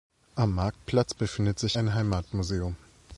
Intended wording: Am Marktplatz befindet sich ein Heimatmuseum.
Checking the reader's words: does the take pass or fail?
pass